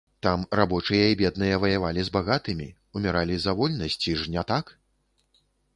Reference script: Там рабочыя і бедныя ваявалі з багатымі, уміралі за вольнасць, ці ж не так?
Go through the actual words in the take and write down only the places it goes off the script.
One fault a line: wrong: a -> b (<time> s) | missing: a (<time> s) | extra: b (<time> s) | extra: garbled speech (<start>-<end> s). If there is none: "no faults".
no faults